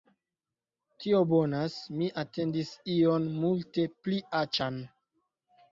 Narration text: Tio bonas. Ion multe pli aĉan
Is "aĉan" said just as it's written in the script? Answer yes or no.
yes